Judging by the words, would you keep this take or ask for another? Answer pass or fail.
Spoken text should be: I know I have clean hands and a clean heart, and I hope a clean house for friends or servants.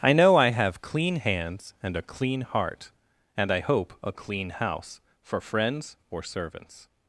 pass